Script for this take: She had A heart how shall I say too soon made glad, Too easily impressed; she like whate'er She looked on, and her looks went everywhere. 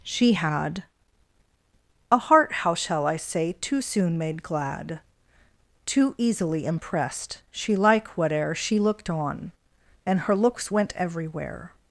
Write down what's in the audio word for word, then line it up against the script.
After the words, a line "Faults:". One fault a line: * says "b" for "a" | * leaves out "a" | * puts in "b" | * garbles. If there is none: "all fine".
She had A heart how shall I say too soon made glad, Too easily impressed; she like whate'er She looked on, and her looks went everywhere.
Faults:
all fine